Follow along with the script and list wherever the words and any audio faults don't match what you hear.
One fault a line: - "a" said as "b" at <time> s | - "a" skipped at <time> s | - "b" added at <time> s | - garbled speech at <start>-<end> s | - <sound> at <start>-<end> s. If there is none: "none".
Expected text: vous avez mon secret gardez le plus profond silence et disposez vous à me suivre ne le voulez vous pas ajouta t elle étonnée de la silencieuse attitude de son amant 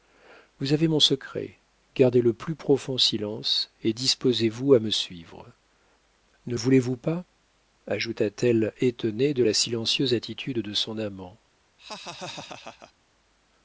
- "le" skipped at 6.5 s
- laugh at 11.8-12.9 s